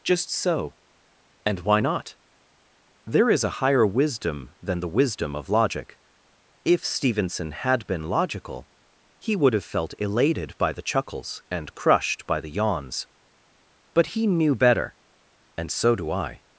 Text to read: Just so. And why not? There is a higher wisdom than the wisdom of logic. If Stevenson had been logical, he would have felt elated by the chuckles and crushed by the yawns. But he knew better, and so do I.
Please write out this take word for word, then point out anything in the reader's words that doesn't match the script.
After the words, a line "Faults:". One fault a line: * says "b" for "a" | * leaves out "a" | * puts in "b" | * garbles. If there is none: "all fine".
Just so. And why not? There is a higher wisdom than the wisdom of logic. If Stevenson had been logical, he would have felt elated by the chuckles and crushed by the yawns. But he knew better, and so do I.
Faults:
all fine